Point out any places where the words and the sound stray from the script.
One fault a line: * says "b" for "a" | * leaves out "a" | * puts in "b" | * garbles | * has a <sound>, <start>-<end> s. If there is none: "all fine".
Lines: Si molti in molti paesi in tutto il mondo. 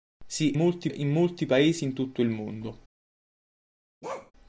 * has a bark, 4.0-4.3 s